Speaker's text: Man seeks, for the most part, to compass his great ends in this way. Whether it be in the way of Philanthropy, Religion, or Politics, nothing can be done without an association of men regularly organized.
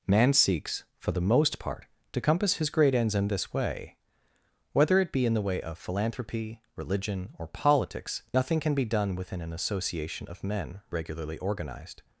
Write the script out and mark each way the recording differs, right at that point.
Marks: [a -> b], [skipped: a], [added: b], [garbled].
Man seeks, for the most part, to compass his great ends in this way. Whether it be in the way of Philanthropy, Religion, or Politics, nothing can be done [without -> within] an association of men regularly organized.